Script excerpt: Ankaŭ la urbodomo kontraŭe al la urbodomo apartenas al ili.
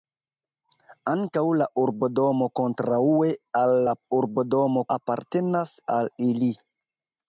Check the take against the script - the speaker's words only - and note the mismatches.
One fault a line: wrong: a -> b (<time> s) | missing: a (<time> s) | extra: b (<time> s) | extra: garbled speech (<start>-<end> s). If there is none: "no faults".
no faults